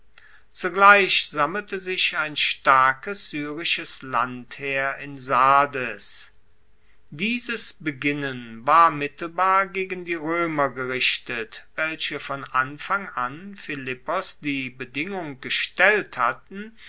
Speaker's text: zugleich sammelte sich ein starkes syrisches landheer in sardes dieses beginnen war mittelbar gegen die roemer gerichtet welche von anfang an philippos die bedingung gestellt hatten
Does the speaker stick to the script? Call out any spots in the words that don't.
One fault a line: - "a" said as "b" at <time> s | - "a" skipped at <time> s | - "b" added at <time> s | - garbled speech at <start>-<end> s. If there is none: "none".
none